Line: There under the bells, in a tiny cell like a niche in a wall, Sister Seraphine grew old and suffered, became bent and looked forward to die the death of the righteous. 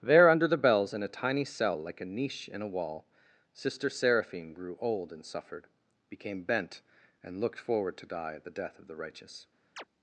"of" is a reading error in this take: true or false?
false